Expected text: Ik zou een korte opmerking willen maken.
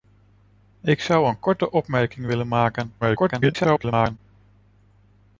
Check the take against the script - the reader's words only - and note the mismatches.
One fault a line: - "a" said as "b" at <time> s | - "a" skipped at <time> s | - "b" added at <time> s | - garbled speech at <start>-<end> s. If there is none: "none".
- garbled speech at 3.0-4.2 s